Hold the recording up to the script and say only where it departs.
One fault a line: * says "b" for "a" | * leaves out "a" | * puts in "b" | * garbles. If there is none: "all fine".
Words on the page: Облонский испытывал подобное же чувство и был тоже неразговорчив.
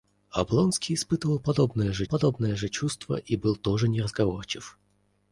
* puts in "подобное же"